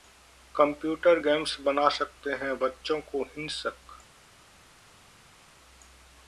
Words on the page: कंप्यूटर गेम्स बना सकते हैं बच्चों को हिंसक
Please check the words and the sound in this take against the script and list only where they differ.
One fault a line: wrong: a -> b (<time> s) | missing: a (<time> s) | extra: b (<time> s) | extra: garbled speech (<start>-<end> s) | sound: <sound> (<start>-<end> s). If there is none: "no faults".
no faults